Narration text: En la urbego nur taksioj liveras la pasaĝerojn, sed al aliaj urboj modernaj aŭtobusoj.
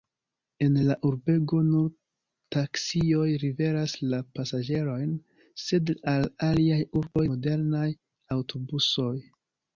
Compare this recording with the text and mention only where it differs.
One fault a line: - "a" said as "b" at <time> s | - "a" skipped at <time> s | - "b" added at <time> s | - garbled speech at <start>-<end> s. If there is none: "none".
none